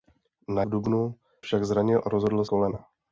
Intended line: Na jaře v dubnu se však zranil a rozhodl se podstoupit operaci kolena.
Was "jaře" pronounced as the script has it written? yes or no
no